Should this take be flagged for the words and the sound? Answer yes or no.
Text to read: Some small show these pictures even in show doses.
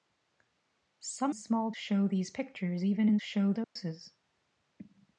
yes